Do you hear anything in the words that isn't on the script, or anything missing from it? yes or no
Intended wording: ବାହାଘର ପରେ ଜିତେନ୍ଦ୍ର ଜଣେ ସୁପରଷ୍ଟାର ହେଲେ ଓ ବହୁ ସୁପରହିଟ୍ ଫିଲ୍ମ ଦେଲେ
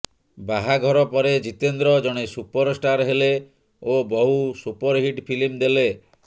no